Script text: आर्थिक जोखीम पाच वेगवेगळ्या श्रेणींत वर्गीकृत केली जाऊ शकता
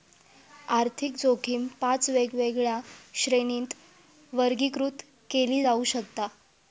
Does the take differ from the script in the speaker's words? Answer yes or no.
no